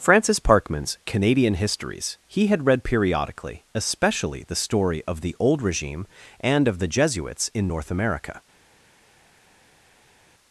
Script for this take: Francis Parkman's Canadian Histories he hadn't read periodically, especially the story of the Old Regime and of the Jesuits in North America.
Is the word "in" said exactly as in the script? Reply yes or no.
yes